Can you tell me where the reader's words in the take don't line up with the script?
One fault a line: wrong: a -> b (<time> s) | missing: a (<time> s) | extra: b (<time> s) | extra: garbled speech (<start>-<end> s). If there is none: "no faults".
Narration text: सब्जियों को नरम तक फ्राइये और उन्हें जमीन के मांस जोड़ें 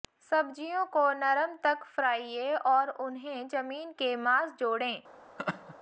no faults